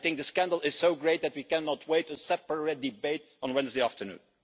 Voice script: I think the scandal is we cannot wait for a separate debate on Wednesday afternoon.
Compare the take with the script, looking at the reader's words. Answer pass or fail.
fail